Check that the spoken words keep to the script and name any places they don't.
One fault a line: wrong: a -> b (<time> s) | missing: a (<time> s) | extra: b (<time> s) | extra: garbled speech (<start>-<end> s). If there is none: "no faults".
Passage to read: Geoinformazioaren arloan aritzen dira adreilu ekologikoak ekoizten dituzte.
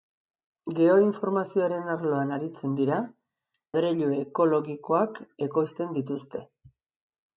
no faults